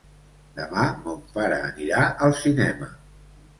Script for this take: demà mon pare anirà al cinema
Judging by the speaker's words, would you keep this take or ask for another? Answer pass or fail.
pass